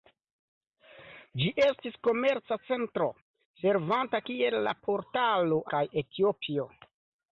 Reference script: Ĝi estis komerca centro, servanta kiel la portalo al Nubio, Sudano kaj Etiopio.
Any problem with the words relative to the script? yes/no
yes